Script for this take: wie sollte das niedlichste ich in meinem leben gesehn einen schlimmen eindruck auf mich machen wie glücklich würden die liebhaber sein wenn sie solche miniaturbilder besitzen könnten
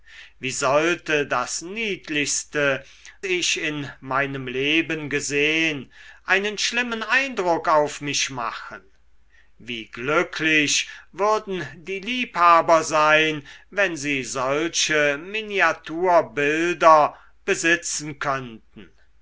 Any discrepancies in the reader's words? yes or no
no